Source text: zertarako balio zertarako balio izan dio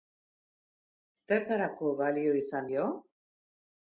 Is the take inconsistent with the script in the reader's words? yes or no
yes